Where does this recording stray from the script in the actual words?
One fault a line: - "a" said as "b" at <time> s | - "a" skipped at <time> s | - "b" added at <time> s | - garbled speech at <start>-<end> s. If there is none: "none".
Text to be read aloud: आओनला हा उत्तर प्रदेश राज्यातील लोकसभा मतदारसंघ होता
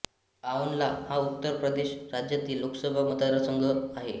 - "होता" said as "आहे" at 3.6 s